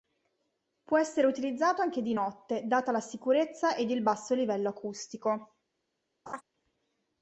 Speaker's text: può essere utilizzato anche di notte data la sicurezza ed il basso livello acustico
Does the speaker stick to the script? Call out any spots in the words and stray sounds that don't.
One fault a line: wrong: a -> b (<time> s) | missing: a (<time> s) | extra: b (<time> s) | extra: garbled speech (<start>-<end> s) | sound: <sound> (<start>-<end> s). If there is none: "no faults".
sound: laugh (6.3-6.4 s)